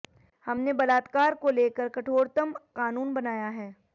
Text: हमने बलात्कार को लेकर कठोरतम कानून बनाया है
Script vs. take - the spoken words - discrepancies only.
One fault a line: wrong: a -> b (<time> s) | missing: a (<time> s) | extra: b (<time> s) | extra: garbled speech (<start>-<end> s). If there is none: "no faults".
no faults